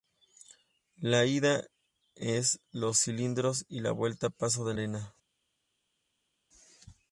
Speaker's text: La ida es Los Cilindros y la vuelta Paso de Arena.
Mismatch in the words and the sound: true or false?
false